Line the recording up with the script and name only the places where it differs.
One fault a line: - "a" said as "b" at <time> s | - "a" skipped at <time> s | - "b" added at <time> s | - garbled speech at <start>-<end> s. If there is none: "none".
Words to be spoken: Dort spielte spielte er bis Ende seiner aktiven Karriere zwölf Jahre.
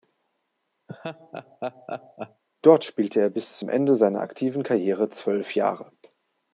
- "spielte" skipped at 3.2 s
- "zum" added at 3.6 s